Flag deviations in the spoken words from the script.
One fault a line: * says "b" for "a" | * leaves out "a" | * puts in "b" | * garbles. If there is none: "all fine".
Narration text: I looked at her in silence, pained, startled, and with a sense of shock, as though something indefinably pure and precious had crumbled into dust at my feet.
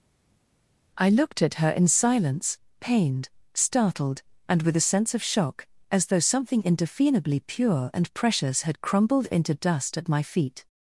all fine